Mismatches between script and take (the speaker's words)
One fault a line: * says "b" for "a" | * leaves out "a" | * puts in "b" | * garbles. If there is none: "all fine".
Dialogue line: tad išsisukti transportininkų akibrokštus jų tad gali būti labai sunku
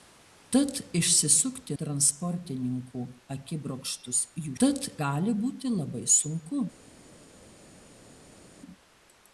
all fine